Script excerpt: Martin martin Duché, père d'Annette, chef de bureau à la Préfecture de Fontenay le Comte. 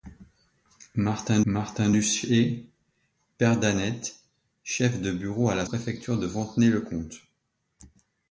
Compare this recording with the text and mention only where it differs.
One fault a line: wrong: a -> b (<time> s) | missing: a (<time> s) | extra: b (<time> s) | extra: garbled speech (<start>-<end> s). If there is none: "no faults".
no faults